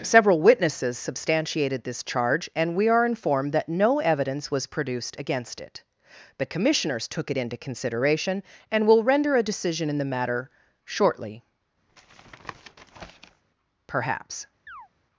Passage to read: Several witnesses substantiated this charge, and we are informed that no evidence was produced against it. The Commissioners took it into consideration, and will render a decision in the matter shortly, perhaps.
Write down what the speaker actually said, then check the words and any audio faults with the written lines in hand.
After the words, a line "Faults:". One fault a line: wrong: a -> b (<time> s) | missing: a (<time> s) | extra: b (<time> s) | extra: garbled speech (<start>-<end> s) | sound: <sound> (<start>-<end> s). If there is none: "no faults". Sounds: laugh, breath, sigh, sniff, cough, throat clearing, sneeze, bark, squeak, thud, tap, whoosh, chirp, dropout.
Several witnesses substantiated this charge, and we are informed that no evidence was produced against it. The Commissioners took it into consideration, and will render a decision in the matter shortly, perhaps.
Faults:
sound: tap (11.9-13.4 s)
sound: chirp (14.7-14.9 s)